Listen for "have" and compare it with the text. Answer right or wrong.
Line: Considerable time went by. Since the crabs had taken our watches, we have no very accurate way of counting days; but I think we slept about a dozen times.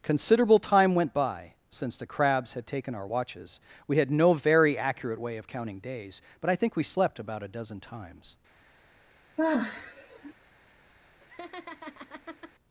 wrong